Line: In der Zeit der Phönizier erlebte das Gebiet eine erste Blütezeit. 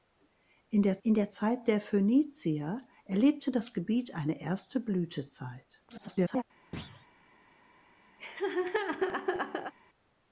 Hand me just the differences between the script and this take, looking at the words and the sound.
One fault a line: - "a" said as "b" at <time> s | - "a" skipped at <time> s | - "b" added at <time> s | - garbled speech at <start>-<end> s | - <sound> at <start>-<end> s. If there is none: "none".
- "in der" added at 1.0 s
- garbled speech at 5.9-6.4 s
- thud at 6.7-7.1 s
- laugh at 8.2-9.7 s